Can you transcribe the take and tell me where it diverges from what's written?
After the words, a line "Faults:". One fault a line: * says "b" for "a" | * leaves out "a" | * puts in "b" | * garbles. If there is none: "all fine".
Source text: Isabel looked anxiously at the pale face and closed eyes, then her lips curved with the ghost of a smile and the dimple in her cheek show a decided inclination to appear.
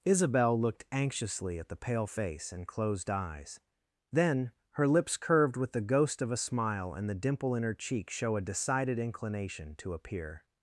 Isabel looked anxiously at the pale face and closed eyes, then her lips curved with the ghost of a smile and the dimple in her cheek show a decided inclination to appear.
Faults:
all fine